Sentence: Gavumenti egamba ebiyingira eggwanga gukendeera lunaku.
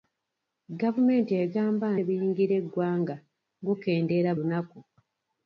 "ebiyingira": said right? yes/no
yes